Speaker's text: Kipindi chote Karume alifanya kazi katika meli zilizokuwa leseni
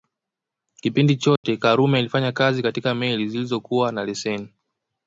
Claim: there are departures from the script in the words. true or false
true